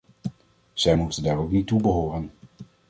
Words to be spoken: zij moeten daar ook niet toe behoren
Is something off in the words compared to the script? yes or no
no